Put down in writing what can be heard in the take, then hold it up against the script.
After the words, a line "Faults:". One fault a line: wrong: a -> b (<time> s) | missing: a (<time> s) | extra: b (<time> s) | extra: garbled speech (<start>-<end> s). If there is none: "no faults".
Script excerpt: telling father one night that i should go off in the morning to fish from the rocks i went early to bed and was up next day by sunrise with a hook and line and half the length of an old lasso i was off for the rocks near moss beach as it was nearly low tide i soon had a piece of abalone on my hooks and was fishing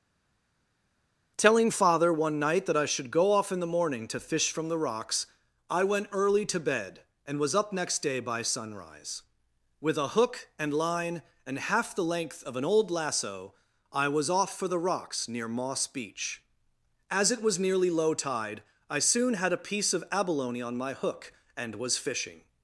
telling father one night that i should go off in the morning to fish from the rocks i went early to bed and was up next day by sunrise with a hook and line and half the length of an old lasso i was off for the rocks near moss beach as it was nearly low tide i soon had a piece of abalone on my hook and was fishing
Faults:
wrong: hooks -> hook (20.9 s)